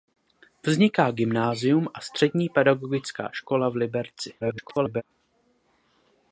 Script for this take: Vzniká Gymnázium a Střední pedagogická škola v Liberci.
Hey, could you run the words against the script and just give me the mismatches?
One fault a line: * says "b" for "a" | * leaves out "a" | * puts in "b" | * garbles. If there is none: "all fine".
* garbles